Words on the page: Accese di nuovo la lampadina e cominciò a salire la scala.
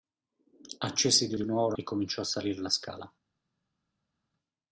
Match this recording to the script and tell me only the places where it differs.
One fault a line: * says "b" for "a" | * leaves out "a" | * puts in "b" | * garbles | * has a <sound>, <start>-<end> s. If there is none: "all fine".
* puts in "di"
* leaves out "lampadina"